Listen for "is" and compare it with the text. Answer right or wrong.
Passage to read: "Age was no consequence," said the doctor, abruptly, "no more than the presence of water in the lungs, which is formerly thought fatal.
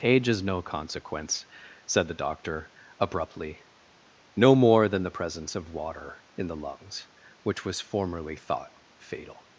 wrong